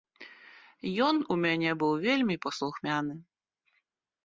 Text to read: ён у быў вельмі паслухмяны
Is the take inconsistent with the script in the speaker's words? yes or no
yes